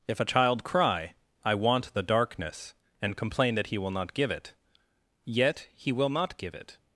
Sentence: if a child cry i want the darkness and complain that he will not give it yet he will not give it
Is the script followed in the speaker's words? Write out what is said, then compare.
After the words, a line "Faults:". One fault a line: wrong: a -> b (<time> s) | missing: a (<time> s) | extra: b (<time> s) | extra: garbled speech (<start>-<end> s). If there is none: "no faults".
if a child cry i want the darkness and complain that he will not give it yet he will not give it
Faults:
no faults